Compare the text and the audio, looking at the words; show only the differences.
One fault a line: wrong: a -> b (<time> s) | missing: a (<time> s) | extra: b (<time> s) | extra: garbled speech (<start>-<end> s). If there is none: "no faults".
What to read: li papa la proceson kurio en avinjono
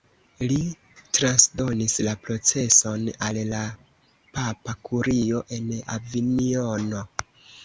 wrong: papa -> transdonis (1.2 s)
extra: al la papa (3.3 s)